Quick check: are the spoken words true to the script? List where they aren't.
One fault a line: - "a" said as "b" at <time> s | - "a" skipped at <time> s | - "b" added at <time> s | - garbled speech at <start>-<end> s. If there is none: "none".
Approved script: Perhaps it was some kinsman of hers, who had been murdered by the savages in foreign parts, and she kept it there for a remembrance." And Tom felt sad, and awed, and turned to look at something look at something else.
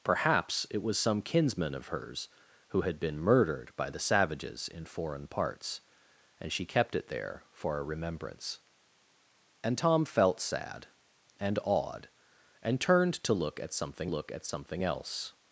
none